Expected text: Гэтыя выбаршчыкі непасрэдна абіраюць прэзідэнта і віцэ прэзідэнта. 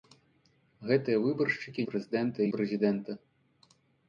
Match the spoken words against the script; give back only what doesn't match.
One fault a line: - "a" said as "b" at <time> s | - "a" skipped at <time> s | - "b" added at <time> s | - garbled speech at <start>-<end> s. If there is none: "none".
- "непасрэдна абіраюць" skipped at 1.9 s
- "віцэ" skipped at 2.5 s